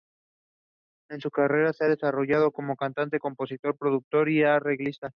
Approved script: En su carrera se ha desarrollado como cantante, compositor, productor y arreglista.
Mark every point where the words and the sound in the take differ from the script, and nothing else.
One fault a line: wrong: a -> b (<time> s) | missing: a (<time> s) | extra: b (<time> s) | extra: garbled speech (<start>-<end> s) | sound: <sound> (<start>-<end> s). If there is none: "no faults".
no faults